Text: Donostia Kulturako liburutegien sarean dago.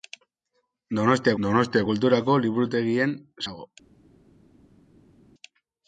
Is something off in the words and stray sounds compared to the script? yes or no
yes